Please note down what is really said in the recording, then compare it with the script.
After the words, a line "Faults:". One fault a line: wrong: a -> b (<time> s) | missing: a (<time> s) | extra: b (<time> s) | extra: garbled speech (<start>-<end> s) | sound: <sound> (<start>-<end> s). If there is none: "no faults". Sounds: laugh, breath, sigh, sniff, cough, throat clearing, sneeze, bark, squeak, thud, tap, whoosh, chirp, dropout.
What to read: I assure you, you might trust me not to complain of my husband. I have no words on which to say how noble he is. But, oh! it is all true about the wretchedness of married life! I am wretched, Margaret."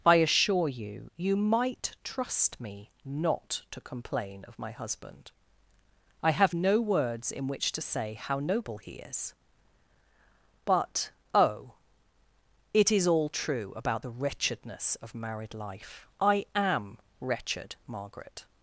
I assure you, you might trust me not to complain of my husband. I have no words in which to say how noble he is. But, oh! it is all true about the wretchedness of married life! I am wretched, Margaret."
Faults:
wrong: on -> in (7.3 s)